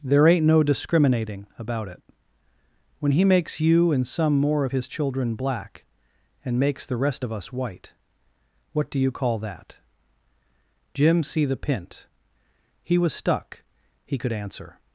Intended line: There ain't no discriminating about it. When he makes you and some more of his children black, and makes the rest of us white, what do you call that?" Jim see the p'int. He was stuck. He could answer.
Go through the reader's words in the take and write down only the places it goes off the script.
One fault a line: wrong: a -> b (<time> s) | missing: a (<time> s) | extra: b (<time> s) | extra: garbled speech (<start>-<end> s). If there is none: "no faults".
no faults